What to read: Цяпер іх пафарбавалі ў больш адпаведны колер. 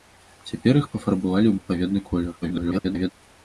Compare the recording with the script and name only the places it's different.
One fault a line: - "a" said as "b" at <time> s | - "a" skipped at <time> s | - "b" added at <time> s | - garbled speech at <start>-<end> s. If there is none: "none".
- "больш" skipped at 1.6 s
- garbled speech at 2.4-3.1 s